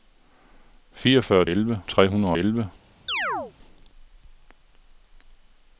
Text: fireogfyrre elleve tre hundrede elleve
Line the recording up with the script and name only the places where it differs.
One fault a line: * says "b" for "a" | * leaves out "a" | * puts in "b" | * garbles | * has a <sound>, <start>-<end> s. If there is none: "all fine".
* has a chirp, 3.1-3.5 s